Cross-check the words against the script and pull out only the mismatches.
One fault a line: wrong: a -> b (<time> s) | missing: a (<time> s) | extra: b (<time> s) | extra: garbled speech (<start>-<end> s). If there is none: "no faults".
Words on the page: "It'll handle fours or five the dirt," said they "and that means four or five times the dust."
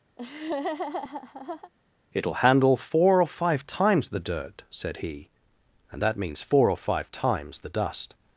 wrong: fours -> four (2.8 s)
extra: times (3.7 s)
wrong: they -> he (5.0 s)